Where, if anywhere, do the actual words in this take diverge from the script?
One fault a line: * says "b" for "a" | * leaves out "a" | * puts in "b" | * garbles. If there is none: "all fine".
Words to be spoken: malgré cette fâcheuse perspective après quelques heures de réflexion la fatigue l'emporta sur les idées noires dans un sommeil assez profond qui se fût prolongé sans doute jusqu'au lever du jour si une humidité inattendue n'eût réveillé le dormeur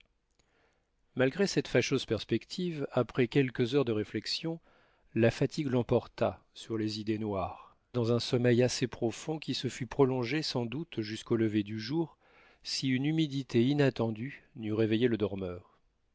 all fine